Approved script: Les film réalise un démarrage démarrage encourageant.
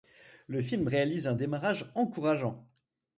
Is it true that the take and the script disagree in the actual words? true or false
true